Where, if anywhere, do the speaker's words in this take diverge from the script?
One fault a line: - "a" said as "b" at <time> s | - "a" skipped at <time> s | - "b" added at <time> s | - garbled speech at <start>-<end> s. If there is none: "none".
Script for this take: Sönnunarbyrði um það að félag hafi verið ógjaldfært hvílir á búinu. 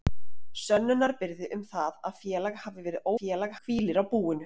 - "ógjaldfært" said as "félag" at 3.2 s